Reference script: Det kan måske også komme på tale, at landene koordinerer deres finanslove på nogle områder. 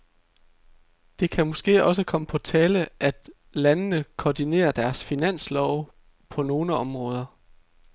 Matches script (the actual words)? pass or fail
pass